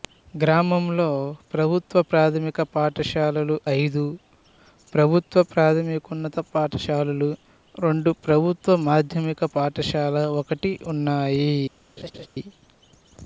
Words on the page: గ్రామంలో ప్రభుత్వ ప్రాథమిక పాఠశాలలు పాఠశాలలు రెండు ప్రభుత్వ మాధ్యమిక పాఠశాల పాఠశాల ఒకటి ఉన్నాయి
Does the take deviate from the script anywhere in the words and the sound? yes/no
yes